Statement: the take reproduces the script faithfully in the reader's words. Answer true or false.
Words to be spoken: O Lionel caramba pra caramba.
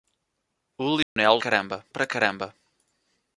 true